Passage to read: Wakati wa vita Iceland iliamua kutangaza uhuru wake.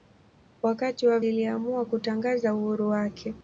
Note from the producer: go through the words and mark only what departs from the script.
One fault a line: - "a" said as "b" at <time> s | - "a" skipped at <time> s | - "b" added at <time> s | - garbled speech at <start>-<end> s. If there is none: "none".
- "vita Iceland" skipped at 1.2 s